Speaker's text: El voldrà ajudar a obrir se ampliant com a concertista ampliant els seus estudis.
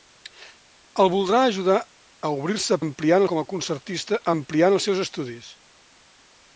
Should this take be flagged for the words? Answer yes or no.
no